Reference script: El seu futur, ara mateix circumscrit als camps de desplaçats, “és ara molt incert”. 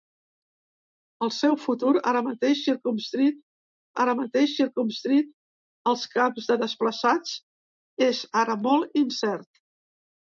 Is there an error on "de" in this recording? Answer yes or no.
no